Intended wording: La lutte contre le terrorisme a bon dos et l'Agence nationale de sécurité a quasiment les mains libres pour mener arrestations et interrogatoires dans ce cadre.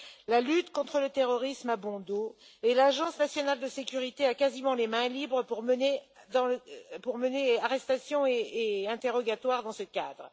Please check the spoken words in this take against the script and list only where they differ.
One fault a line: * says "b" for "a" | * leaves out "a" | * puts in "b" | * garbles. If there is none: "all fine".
all fine